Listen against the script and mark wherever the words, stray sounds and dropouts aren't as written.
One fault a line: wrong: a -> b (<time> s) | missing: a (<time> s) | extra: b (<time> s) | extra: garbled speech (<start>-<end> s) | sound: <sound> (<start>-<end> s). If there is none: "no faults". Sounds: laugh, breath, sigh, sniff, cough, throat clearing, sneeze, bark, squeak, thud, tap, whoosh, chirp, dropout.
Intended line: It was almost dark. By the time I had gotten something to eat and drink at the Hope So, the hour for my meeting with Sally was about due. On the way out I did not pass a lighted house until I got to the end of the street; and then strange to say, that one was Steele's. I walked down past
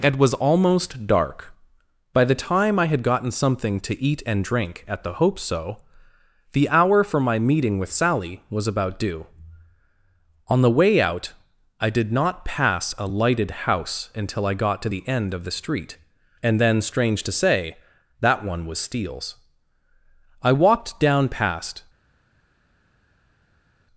no faults